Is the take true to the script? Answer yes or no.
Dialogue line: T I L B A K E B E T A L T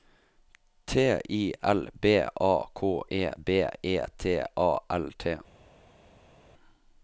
yes